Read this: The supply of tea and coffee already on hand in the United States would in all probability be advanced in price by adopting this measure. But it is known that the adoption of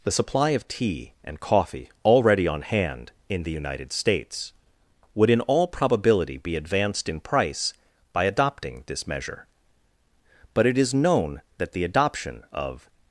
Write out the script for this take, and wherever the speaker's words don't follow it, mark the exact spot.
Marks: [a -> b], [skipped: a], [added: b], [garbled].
The supply of tea and coffee already on hand in the United States would in all probability be advanced in price by adopting this measure. But it is known that the adoption of